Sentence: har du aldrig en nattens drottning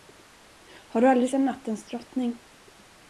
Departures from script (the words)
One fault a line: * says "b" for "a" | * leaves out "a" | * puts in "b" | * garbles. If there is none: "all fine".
all fine